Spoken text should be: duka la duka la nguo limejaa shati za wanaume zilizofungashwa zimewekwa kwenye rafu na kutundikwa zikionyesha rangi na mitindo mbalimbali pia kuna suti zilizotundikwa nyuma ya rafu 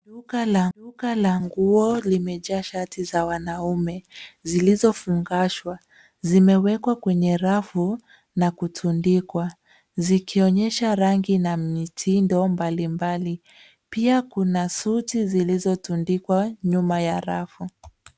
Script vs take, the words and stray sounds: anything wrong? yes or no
no